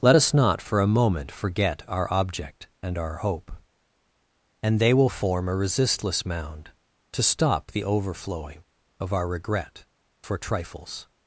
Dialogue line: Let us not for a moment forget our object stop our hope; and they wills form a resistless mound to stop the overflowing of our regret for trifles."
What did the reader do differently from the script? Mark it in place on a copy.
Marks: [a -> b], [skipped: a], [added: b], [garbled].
Let us not for a moment forget our object [stop -> and] our hope; and they [wills -> will] form a resistless mound to stop the overflowing of our regret for trifles."